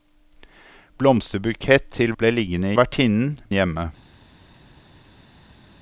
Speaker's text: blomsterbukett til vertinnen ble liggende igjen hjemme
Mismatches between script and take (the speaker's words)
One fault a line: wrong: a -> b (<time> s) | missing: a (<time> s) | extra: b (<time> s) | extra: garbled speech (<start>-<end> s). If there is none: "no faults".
missing: vertinnen (2.1 s)
wrong: igjen -> vertinnen (2.8 s)